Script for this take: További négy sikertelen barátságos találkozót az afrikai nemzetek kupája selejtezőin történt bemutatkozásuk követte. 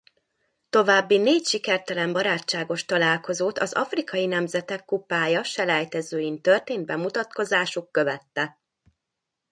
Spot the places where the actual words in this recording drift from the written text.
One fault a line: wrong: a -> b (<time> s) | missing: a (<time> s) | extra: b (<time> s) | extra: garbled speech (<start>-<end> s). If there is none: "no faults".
no faults